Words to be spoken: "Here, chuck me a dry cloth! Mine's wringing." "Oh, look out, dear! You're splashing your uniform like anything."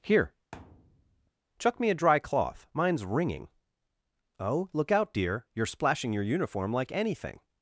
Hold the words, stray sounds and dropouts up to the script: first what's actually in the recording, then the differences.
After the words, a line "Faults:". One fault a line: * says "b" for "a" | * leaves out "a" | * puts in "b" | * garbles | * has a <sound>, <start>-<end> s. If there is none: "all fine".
"Here, chuck me a dry cloth! Mine's wringing." "Oh, look out, dear! You're splashing your uniform like anything."
Faults:
* has a thud, 0.5-1.3 s